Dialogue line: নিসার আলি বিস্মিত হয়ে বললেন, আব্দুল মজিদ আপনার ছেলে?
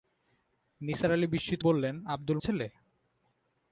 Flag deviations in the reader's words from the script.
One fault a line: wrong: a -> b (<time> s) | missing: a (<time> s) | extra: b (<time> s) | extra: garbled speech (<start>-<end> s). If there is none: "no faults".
missing: হয়ে (1.6 s)
missing: মজিদ আপনার (2.4 s)